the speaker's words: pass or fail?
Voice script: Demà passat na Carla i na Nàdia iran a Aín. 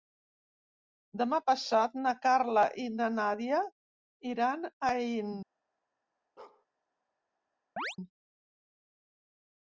pass